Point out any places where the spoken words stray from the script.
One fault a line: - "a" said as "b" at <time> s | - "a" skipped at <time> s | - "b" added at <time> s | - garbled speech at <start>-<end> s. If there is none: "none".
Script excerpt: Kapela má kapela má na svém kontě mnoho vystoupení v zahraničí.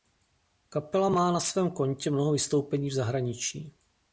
- "kapela má" skipped at 1.3 s